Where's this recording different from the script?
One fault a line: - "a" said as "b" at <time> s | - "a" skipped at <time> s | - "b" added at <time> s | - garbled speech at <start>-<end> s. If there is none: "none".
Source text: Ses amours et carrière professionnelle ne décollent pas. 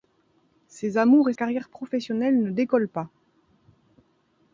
none